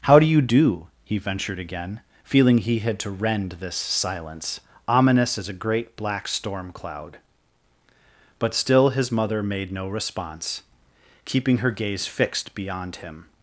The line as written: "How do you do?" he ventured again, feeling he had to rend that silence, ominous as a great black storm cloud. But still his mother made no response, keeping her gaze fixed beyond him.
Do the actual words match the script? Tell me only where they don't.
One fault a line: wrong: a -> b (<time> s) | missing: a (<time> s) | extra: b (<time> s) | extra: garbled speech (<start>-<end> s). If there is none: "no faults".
wrong: that -> this (3.6 s)